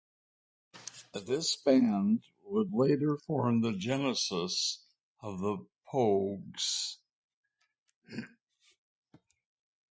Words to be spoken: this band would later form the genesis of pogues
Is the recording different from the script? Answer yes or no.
yes